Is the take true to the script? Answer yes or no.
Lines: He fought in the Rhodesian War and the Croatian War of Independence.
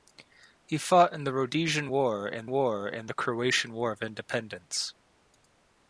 no